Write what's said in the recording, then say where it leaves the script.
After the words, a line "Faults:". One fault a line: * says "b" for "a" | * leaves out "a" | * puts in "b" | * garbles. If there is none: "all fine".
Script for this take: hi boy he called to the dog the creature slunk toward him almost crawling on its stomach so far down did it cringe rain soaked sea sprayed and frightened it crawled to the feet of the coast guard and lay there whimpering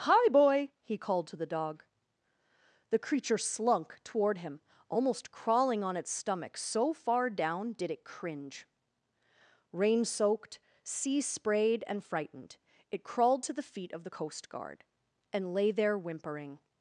hi boy he called to the dog the creature slunk toward him almost crawling on its stomach so far down did it cringe rain soaked sea sprayed and frightened it crawled to the feet of the coast guard and lay there whimpering
Faults:
all fine